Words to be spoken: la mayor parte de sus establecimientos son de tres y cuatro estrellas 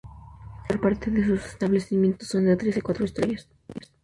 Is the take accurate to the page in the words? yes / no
yes